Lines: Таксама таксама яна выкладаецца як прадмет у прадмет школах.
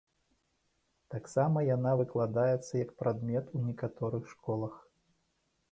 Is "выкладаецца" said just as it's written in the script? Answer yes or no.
yes